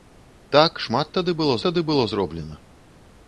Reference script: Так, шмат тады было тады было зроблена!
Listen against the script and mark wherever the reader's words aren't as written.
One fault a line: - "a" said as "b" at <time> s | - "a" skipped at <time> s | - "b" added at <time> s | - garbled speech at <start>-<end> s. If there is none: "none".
none